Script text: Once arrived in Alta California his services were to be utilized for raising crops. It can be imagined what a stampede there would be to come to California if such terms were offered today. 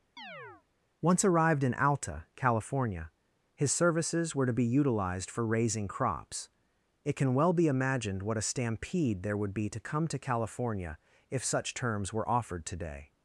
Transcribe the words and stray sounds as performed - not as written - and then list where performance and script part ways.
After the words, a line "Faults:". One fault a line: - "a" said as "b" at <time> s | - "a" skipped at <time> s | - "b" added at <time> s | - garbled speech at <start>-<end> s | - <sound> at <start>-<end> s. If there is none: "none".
Once arrived in Alta California his services were to be utilized for raising crops. It can well be imagined what a stampede there would be to come to California if such terms were offered today.
Faults:
- chirp at 0.2-0.6 s
- "well" added at 7.3 s